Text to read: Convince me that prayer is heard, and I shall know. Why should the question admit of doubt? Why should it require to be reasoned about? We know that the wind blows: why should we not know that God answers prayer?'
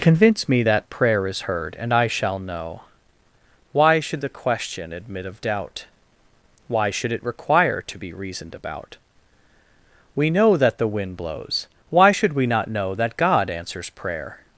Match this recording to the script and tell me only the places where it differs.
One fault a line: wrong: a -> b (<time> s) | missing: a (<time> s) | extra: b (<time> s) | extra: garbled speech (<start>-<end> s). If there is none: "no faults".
no faults